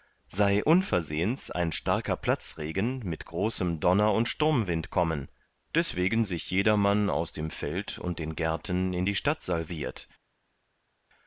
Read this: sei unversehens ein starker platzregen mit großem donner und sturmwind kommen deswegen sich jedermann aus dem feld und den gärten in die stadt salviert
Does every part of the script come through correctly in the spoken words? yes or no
yes